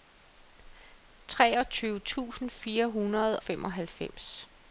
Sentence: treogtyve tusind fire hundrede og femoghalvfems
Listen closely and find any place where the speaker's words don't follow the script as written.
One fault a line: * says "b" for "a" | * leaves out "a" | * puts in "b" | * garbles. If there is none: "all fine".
* leaves out "og"